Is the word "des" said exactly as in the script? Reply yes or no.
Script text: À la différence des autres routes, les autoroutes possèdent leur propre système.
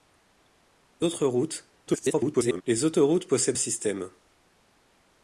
no